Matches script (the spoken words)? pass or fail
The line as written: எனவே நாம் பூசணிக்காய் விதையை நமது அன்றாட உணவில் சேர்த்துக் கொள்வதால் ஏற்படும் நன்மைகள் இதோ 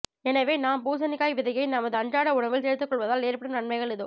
pass